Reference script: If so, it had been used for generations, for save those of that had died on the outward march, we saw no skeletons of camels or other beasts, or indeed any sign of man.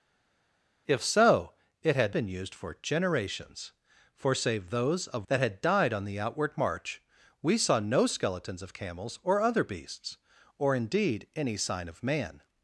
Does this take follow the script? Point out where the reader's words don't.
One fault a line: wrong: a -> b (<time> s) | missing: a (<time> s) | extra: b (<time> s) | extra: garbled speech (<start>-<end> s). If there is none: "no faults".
no faults